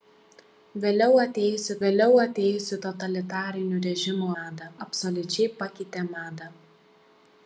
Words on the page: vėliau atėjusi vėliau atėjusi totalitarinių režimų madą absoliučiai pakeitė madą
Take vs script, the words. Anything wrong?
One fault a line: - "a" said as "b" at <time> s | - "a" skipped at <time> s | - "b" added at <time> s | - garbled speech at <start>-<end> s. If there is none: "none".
none